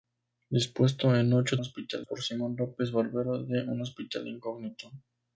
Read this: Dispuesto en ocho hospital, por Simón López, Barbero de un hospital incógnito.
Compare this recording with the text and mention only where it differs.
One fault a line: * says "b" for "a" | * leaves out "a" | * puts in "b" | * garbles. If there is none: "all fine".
all fine